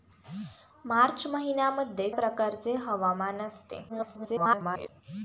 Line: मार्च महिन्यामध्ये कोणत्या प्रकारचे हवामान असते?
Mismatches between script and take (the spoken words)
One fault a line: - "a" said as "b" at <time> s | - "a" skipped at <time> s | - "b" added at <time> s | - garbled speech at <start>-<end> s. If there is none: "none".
- "कोणत्या" skipped at 2.1 s
- garbled speech at 3.9-4.9 s